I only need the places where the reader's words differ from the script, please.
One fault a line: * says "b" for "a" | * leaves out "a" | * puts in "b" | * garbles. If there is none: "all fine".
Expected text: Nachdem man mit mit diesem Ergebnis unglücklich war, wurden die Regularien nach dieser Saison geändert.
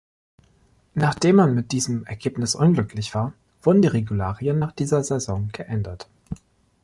* leaves out "mit"